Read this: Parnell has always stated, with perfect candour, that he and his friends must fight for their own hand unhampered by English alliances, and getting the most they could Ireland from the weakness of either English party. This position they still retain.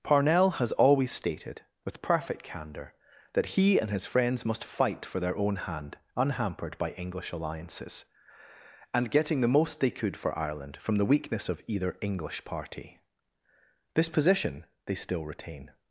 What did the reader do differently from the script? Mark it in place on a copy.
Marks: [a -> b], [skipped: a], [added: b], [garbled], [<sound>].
Parnell has always stated, with perfect candour, that he and his friends must fight for their own hand unhampered by English alliances, and getting the most they could [added: for] Ireland from the weakness of either English party. This position they still retain.